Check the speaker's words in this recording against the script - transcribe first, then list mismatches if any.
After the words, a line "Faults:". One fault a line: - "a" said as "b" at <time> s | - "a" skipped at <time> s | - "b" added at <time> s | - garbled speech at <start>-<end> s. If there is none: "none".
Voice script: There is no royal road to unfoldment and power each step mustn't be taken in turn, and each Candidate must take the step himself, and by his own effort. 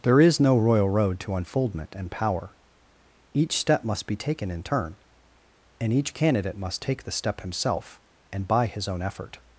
There is no royal road to unfoldment and power each step must be taken in turn, and each Candidate must take the step himself, and by his own effort.
Faults:
- "mustn't" said as "must" at 3.9 s